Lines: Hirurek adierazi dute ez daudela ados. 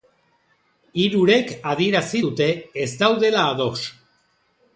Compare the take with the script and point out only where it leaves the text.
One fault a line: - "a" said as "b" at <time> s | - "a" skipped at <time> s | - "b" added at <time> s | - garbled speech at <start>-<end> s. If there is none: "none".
none